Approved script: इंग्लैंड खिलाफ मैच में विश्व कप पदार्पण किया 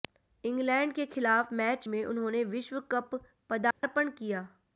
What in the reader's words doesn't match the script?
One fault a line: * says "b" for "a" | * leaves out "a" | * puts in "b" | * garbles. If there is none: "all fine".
* puts in "के"
* puts in "उन्होंने"